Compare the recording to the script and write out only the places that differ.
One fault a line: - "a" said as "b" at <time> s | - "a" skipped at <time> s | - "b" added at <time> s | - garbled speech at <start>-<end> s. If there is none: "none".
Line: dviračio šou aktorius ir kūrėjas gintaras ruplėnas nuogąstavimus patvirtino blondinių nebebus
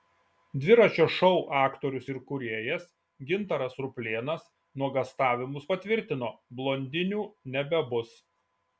none